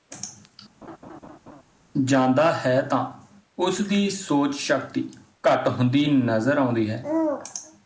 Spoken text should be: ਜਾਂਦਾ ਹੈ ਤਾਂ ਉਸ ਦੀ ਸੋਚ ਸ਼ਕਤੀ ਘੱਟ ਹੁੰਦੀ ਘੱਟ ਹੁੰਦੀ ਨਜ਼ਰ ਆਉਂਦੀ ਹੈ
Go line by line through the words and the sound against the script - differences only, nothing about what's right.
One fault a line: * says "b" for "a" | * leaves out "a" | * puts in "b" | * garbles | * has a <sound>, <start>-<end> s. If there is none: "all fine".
* has a laugh, 0.8-1.6 s
* leaves out "ਘੱਟ ਹੁੰਦੀ"